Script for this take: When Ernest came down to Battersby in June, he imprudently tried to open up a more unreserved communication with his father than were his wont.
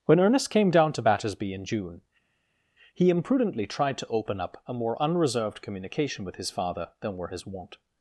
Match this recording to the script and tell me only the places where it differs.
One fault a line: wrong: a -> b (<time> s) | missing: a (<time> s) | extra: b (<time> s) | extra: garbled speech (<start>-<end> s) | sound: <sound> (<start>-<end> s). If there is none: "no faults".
no faults